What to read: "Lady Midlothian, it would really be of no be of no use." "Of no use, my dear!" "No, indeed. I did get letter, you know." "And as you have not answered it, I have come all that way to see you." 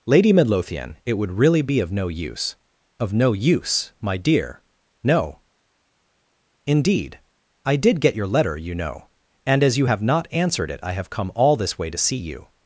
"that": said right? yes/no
no